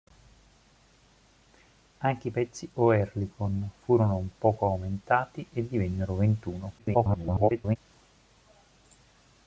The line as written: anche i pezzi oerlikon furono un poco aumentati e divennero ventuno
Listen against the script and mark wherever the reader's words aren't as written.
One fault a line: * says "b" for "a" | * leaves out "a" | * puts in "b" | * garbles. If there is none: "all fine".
* garbles